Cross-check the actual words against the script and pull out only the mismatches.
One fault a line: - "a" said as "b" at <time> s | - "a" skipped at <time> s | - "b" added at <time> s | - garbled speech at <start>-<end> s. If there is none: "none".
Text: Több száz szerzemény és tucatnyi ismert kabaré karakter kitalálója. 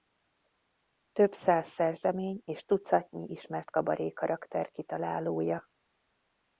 none